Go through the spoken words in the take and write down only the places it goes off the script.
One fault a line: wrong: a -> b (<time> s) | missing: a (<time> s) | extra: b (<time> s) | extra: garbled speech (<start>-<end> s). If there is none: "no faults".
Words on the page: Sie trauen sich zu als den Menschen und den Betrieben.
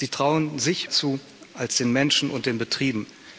no faults